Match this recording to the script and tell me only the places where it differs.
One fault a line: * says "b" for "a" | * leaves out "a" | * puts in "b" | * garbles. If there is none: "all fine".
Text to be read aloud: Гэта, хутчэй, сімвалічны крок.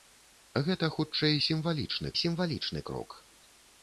* puts in "сімвалічны"